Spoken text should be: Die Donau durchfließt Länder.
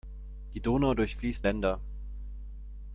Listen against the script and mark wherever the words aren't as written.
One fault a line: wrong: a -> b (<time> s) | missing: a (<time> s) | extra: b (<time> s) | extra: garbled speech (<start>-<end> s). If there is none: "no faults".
no faults